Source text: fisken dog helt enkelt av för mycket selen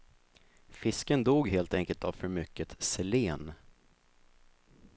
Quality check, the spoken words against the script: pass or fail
pass